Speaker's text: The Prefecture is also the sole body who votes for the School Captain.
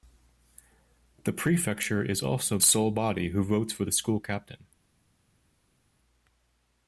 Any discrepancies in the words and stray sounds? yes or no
yes